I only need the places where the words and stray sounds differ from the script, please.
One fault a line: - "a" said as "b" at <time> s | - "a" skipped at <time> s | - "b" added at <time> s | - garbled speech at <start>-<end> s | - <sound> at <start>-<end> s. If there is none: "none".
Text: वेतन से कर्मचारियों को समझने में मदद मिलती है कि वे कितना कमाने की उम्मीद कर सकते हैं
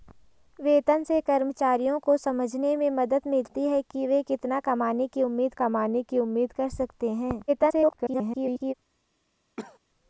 - "कमाने की उम्मीद" added at 5.5 s
- garbled speech at 7.5-8.7 s
- cough at 9.6-9.8 s